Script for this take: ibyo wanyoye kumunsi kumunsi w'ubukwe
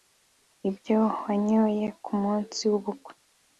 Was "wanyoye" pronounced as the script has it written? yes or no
yes